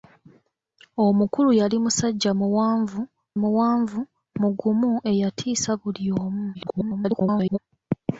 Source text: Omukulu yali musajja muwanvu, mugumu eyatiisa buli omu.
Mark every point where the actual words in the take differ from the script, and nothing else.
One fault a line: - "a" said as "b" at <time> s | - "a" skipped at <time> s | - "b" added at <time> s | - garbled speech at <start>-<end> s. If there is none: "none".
- "muwanvu" added at 3.4 s
- garbled speech at 6.5-7.6 s